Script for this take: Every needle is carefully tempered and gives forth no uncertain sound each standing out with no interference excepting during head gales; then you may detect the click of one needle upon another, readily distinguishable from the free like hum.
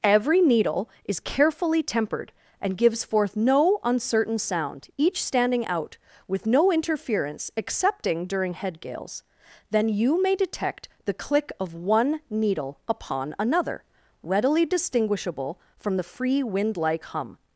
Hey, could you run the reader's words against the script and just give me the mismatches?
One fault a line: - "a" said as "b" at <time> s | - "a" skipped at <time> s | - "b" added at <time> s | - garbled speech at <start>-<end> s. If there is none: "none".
- "wind" added at 16.4 s